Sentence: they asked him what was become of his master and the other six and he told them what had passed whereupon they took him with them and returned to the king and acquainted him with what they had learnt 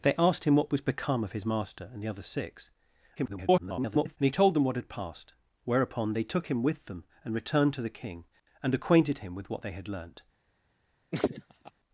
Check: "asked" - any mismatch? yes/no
no